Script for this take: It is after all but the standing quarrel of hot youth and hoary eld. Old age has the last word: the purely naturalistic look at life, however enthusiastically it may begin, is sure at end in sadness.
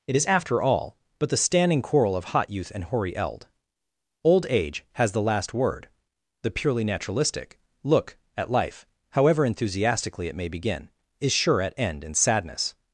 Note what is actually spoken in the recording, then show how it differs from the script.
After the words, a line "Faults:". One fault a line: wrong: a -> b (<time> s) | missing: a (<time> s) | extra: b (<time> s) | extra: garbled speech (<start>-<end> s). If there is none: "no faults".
It is after all but the standing quarrel of hot youth and hoary eld. Old age has the last word: the purely naturalistic look at life, however enthusiastically it may begin, is sure at end in sadness.
Faults:
no faults